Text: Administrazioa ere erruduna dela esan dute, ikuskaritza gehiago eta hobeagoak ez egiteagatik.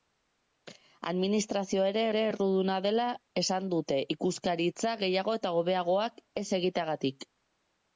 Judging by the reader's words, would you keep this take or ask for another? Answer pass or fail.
fail